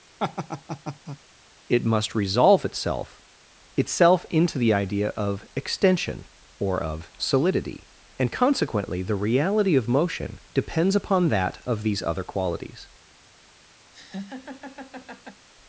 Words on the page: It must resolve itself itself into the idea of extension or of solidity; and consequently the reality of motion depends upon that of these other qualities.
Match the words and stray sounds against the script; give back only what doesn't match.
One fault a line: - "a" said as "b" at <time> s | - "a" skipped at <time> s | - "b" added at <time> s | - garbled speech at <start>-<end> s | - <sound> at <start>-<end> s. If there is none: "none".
- laugh at 0.2-1.2 s
- laugh at 13.9-15.5 s